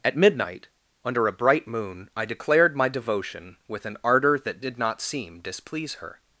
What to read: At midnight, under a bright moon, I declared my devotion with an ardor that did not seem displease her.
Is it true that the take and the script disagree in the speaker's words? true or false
false